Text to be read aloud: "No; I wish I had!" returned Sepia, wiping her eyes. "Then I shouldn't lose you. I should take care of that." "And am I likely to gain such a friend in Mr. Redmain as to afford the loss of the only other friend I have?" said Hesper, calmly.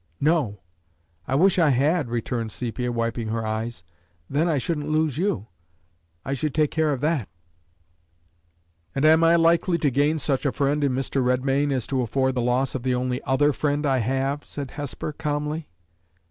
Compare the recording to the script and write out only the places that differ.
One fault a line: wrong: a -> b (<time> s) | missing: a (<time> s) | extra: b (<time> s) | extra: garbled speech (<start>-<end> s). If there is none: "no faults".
no faults